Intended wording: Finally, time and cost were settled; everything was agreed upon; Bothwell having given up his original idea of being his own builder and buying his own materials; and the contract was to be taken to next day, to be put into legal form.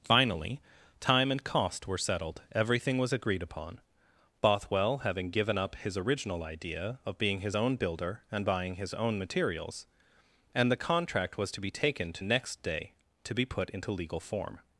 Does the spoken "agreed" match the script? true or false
true